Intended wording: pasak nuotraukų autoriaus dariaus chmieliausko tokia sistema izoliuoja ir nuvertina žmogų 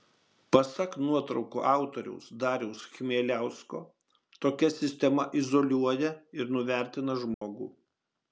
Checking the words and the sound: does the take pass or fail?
fail